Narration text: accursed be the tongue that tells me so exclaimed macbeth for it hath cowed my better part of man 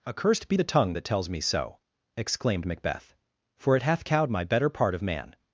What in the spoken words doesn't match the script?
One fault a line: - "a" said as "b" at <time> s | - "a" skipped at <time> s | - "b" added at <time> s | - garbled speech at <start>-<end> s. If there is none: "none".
none